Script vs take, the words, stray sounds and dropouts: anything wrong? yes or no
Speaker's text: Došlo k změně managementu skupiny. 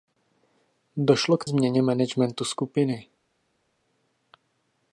no